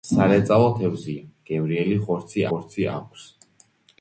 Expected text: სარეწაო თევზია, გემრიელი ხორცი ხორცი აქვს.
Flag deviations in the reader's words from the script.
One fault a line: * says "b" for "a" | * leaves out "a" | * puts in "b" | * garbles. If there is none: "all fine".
all fine